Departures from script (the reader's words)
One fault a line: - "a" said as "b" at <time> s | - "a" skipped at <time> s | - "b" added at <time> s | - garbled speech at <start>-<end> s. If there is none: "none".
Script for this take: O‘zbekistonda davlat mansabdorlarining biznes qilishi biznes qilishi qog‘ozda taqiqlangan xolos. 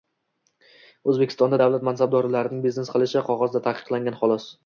- "biznes qilishi" skipped at 3.2 s